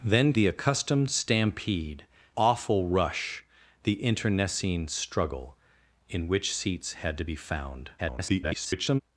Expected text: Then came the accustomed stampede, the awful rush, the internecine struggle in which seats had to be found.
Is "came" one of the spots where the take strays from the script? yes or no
yes